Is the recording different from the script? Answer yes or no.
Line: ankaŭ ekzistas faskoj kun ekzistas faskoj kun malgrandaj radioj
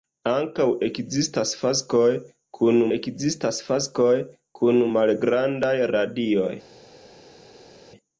no